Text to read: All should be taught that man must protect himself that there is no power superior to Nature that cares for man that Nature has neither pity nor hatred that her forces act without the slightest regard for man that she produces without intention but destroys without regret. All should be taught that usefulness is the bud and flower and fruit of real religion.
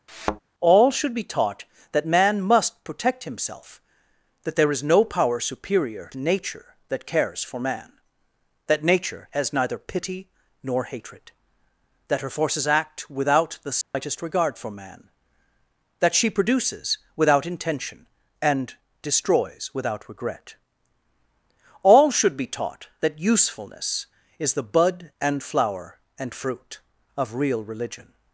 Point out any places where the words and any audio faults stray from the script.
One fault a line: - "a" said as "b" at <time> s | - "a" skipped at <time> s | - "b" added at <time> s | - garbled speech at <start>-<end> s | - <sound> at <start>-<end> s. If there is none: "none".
- thud at 0.1-0.4 s
- dropout at 13.8-13.9 s
- "but" said as "and" at 18.4 s